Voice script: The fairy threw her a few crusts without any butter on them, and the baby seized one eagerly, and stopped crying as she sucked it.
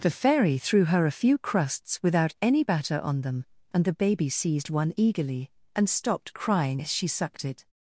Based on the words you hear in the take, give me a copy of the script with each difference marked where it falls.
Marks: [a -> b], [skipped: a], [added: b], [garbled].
The fairy threw her a few crusts without any [butter -> batter] on them, and the baby seized one eagerly, and stopped crying as she sucked it.